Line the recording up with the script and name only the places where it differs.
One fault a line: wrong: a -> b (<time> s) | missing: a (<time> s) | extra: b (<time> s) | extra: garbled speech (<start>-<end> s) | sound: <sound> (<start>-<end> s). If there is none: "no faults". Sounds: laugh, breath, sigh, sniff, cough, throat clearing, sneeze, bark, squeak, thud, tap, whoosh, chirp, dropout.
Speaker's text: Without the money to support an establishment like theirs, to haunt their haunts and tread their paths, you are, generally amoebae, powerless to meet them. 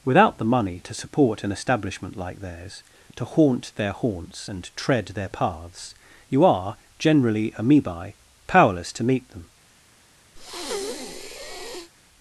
sound: breath (10.4-11.9 s)